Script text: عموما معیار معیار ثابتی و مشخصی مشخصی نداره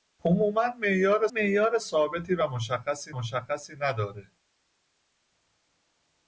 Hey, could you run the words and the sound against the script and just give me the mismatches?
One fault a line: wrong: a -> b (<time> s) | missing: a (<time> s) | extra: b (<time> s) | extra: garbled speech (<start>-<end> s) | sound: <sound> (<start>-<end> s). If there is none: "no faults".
no faults